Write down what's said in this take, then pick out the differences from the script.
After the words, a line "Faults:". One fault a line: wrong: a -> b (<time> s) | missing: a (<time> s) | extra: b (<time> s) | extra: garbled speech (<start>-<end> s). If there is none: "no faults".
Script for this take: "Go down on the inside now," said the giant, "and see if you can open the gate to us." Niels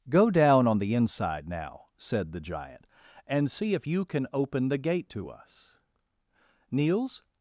"Go down on the inside now," said the giant, "and see if you can open the gate to us." Niels
Faults:
no faults